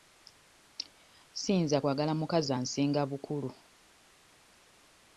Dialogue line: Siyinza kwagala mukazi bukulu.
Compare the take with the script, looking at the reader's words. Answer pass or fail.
fail